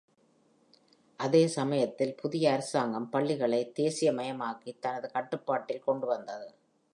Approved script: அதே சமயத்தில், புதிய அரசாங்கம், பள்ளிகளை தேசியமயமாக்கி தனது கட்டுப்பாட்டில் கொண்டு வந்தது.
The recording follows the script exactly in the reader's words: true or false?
true